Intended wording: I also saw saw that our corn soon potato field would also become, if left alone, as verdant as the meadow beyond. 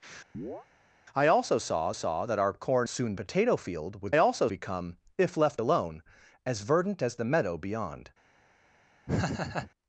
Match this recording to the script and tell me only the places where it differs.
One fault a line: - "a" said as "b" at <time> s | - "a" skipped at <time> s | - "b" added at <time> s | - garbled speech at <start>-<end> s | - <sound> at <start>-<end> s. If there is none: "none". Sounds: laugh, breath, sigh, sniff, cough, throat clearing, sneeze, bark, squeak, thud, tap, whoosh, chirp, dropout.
- chirp at 0.3-0.7 s
- laugh at 9.1-9.7 s